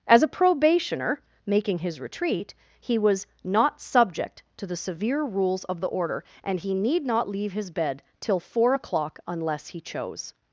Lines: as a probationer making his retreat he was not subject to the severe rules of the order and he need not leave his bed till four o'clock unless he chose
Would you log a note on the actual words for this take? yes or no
no